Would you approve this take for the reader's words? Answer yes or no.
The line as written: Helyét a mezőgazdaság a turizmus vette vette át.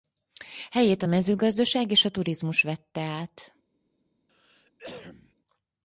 no